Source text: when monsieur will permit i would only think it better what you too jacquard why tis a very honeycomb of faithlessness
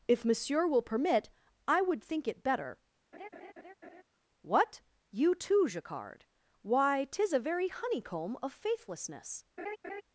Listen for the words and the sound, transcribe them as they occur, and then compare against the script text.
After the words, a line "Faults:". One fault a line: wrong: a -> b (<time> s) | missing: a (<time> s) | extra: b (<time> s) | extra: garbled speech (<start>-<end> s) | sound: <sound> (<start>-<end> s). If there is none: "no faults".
if monsieur will permit i would think it better what you too jacquard why tis a very honeycomb of faithlessness
Faults:
wrong: when -> if (0.1 s)
missing: only (2.0 s)
sound: laugh (3.1-4.0 s)
sound: laugh (9.6-10.0 s)